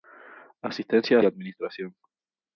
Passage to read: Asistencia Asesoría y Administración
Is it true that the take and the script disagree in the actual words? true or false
true